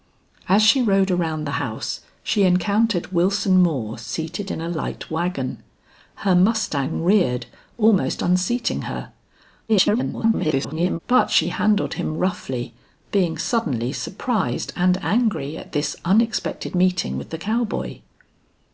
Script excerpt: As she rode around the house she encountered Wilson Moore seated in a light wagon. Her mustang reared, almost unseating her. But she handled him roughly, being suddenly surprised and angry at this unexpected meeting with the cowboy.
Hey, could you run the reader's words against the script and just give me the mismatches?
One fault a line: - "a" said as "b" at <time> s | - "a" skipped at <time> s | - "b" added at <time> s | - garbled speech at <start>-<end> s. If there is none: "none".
- garbled speech at 9.7-11.0 s